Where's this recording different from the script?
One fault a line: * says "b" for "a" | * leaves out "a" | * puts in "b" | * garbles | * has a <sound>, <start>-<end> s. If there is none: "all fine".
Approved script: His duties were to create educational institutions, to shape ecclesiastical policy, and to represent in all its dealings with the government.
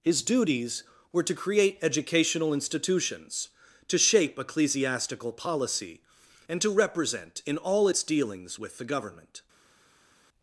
all fine